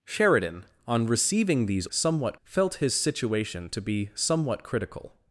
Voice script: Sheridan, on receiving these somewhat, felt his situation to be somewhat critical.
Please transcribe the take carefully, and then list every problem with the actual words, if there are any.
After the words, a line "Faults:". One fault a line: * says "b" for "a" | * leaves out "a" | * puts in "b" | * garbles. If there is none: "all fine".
Sheridan, on receiving these somewhat, felt his situation to be somewhat critical.
Faults:
all fine